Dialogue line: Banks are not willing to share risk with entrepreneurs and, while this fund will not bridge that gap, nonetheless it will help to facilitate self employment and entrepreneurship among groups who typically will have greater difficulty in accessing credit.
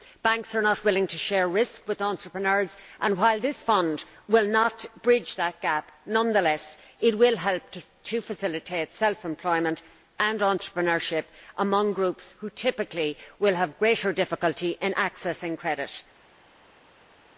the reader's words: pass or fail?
pass